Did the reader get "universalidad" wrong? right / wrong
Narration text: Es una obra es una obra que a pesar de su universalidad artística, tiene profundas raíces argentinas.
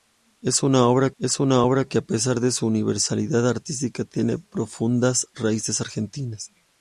right